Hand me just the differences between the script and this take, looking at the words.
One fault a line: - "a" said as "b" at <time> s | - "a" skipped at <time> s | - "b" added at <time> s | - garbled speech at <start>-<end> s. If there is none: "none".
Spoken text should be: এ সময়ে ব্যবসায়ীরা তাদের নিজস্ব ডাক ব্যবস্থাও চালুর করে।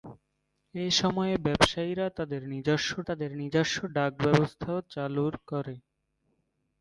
- "তাদের নিজস্ব" added at 3.1 s